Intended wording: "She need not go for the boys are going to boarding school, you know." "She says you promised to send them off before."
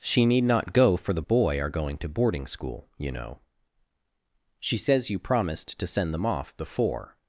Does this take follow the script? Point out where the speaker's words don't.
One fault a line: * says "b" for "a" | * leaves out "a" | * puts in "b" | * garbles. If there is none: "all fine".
* says "boy" for "boys"